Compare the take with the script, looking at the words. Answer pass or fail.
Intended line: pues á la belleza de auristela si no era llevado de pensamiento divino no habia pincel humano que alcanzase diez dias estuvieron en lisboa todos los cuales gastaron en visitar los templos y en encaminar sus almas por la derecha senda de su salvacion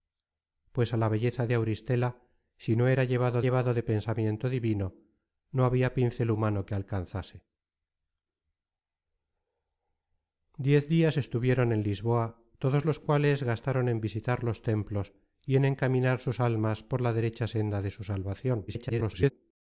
fail